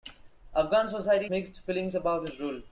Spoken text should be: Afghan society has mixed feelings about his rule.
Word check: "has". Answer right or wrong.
wrong